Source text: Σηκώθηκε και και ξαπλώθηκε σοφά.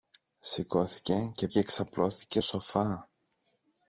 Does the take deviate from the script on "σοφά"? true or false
false